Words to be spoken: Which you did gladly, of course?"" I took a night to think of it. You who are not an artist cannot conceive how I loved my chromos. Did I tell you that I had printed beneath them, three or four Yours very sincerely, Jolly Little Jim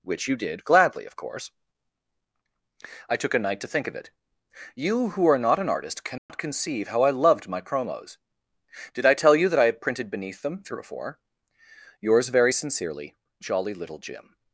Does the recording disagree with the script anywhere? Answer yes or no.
no